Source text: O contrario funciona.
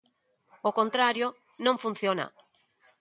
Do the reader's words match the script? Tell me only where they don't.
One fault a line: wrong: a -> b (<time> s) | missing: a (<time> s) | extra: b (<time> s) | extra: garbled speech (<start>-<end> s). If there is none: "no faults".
extra: non (1.6 s)